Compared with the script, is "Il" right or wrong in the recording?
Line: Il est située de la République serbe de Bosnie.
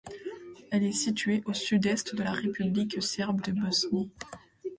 wrong